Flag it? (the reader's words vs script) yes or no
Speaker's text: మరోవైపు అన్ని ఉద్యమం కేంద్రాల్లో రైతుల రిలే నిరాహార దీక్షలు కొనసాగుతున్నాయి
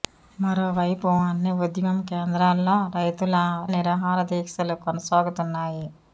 yes